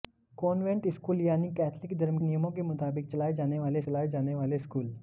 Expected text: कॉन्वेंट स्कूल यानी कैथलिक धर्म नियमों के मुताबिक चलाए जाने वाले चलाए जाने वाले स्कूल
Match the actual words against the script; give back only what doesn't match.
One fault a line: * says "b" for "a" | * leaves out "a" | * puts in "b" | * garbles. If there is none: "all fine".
all fine